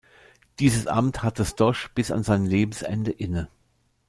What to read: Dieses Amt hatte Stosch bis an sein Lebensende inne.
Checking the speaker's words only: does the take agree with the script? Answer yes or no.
yes